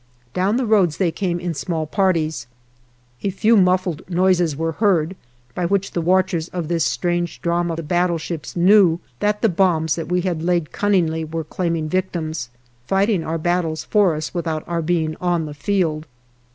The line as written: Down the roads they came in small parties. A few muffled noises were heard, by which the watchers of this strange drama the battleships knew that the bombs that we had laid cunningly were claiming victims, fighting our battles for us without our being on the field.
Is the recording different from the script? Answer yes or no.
no